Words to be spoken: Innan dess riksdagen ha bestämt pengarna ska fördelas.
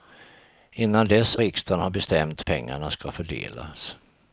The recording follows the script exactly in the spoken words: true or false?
true